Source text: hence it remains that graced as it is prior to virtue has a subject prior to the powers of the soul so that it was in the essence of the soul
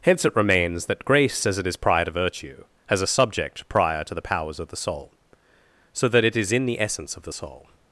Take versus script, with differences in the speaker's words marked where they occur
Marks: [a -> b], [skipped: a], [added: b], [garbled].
hence it remains that [graced -> grace] as it is prior to virtue has a subject prior to the powers of the soul so that it [was -> is] in the essence of the soul